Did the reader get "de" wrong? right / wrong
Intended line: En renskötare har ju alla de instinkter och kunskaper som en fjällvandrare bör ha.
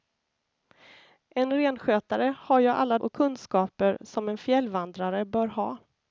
wrong